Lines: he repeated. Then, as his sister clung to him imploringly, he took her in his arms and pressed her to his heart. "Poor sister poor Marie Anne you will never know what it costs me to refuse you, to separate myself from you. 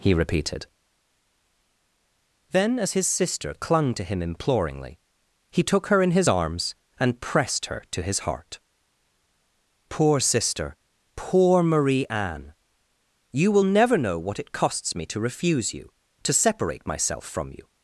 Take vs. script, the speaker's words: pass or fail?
pass